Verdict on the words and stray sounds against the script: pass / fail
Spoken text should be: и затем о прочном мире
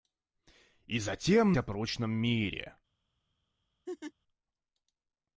fail